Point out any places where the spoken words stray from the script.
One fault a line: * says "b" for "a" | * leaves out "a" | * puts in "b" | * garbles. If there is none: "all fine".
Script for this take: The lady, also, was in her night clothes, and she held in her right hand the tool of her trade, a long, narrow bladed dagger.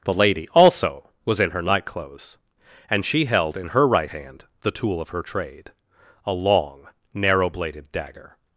all fine